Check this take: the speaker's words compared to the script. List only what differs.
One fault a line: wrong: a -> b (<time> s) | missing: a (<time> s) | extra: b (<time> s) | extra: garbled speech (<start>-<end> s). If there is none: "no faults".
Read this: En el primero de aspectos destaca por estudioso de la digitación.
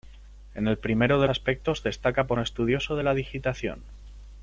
no faults